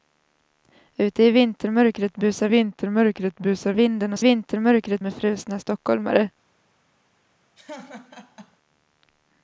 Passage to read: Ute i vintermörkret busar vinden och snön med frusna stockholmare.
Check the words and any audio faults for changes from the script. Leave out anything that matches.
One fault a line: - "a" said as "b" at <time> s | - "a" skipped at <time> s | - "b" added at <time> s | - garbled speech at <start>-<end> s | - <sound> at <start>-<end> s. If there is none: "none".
- "vintermörkret busar" added at 2.5 s
- "snön" said as "vintermörkret" at 4.2 s
- laugh at 7.6-8.6 s